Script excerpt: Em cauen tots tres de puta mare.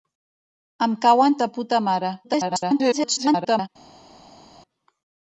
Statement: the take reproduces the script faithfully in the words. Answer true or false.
false